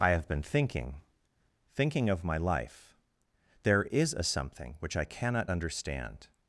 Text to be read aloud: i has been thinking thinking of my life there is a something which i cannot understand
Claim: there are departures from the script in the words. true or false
true